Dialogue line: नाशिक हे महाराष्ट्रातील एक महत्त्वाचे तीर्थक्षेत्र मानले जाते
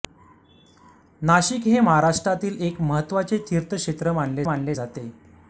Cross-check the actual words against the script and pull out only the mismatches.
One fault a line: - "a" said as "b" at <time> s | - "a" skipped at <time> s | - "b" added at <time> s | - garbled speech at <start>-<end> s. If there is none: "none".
- "मानले" added at 4.4 s